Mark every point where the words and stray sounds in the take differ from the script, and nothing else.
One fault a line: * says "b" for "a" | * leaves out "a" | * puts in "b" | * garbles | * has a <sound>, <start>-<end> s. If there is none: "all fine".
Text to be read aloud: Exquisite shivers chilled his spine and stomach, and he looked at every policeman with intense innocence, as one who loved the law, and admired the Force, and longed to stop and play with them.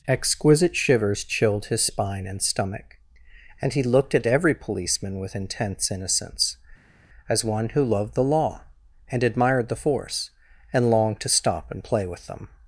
all fine